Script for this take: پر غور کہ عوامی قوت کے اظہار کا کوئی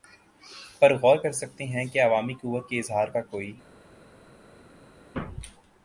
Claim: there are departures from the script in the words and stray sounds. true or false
true